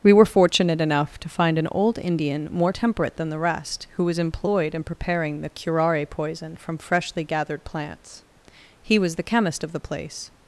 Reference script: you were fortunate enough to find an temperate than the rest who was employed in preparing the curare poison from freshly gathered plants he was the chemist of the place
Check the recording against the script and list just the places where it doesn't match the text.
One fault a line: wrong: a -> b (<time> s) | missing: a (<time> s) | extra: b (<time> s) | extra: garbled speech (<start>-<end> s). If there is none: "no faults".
wrong: you -> we (0.0 s)
extra: old indian more (1.7 s)